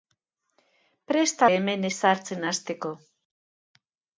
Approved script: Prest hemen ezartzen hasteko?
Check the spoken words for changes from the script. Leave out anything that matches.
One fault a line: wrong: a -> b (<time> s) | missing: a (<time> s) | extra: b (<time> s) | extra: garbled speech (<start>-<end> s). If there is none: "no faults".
no faults